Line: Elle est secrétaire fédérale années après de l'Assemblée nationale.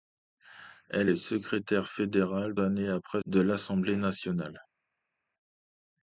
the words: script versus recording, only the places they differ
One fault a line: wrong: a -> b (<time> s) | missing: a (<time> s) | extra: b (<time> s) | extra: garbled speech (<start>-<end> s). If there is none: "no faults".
no faults